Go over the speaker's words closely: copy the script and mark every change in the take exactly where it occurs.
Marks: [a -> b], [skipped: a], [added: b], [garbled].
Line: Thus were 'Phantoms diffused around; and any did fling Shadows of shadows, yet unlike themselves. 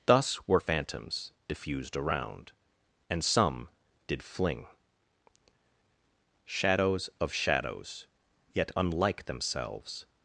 Thus were 'Phantoms diffused around; and [any -> some] did fling Shadows of shadows, yet unlike themselves.